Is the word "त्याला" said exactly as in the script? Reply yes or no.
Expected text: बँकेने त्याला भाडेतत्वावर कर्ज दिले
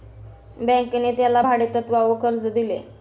yes